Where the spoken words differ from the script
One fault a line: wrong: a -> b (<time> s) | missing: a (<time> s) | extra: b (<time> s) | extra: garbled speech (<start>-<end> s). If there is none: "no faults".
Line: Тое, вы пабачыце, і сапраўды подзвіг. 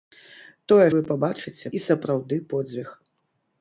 no faults